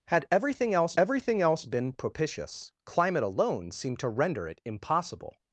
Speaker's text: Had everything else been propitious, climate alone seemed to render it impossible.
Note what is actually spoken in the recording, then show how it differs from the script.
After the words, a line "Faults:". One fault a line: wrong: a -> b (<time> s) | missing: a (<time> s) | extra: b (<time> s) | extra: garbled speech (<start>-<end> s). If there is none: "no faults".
Had everything else everything else been propitious, climate alone seemed to render it impossible.
Faults:
extra: everything else (1.0 s)